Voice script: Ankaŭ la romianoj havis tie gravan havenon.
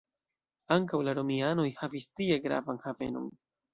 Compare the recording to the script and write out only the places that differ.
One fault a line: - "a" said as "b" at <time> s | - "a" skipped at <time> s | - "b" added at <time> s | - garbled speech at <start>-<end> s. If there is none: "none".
none